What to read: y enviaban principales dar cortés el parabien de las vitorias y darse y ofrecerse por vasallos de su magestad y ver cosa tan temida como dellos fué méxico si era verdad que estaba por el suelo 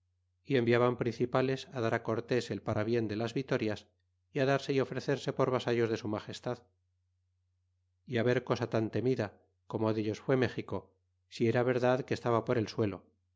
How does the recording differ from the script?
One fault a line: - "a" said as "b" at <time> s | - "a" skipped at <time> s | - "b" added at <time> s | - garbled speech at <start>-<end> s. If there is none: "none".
none